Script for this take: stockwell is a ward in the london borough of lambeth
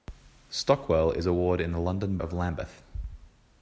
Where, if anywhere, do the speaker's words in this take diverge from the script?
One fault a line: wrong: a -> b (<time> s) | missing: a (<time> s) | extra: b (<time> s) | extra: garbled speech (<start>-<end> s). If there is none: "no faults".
missing: borough (2.2 s)